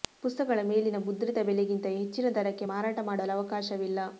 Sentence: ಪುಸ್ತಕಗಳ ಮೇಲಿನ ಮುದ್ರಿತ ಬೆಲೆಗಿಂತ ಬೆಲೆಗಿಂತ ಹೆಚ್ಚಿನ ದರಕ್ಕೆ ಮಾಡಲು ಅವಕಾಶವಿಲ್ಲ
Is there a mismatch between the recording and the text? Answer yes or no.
yes